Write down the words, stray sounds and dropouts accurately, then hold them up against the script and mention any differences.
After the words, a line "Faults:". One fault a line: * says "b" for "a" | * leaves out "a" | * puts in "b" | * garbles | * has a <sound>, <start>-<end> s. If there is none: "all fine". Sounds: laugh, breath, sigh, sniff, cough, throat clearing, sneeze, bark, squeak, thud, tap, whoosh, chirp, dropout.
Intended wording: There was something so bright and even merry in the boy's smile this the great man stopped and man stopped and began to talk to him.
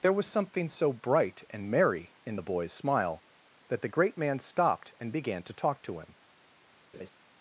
There was something so bright and merry in the boy's smile that the great man stopped and began to talk to him.
Faults:
* leaves out "even"
* says "that" for "this"
* leaves out "man stopped and"
* has a laugh, 6.9-7.1 s